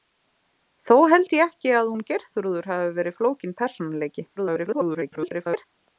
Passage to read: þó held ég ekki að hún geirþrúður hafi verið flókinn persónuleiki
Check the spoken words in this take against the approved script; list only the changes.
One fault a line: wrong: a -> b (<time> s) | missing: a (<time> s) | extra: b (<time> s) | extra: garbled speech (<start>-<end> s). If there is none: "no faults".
extra: garbled speech (4.4-5.7 s)